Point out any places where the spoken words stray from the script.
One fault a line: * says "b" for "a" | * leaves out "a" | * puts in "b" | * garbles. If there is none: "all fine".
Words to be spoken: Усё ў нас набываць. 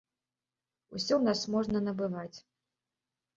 * puts in "можна"